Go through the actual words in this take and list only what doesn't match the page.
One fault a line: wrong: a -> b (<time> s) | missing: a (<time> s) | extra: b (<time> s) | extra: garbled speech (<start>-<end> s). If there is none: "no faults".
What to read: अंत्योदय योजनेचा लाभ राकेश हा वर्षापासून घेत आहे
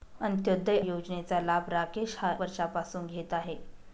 no faults